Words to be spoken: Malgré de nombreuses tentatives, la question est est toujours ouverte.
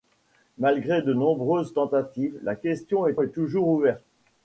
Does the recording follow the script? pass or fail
pass